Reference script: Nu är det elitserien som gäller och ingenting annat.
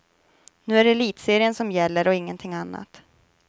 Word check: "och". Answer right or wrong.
right